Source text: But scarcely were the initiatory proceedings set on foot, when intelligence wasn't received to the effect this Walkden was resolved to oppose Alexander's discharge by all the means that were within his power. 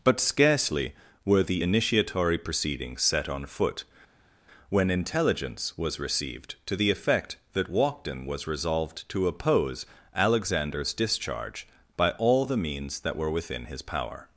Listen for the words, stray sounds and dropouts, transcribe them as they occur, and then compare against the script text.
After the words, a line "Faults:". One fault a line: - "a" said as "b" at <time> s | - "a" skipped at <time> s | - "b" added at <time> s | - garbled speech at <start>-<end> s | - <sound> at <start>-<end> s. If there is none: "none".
But scarcely were the initiatory proceedings set on foot, when intelligence was received to the effect that Walkden was resolved to oppose Alexander's discharge by all the means that were within his power.
Faults:
- "wasn't" said as "was" at 5.8 s
- "this" said as "that" at 7.5 s